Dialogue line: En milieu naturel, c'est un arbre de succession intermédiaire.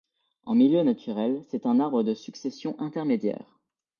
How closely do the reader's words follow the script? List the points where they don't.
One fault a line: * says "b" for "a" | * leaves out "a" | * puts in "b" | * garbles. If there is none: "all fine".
all fine